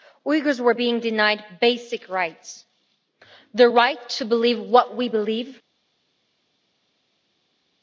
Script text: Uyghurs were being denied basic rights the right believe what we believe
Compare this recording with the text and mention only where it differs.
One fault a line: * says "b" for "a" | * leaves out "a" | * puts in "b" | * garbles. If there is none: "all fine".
* puts in "to"